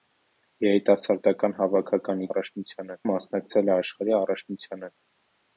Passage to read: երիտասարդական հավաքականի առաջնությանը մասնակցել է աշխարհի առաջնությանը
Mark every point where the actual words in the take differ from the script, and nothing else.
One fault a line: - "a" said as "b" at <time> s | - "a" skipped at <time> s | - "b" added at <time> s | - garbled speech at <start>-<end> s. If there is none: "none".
none